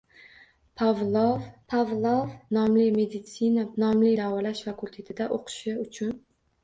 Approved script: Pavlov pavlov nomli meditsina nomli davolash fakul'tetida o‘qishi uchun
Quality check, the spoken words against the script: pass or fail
pass